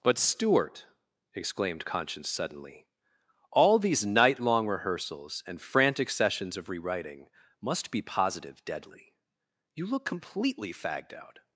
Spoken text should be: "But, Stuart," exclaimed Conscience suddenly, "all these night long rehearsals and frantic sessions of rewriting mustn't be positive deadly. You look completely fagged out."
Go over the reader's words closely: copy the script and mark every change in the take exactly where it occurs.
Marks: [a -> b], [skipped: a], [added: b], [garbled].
"But, Stuart," exclaimed Conscience suddenly, "all these night long rehearsals and frantic sessions of rewriting [mustn't -> must] be positive deadly. You look completely fagged out."